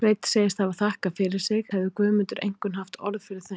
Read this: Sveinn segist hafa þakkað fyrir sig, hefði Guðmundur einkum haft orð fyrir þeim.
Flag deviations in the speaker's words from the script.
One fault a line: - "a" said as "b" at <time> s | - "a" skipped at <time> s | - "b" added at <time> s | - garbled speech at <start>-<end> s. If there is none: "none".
none